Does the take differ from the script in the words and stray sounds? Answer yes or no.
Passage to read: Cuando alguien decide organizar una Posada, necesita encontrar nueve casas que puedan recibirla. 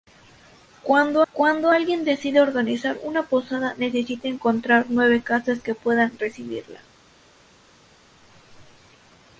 yes